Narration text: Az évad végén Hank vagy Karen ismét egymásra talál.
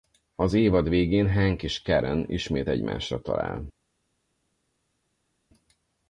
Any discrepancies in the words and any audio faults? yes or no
yes